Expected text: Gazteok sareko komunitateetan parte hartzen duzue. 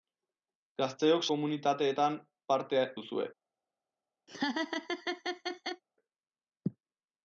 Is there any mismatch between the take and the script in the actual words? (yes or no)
yes